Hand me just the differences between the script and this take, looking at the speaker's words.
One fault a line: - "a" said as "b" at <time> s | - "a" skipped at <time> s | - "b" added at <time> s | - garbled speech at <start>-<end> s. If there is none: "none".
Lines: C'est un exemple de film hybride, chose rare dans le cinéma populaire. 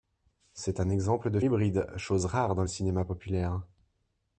- "film" skipped at 1.4 s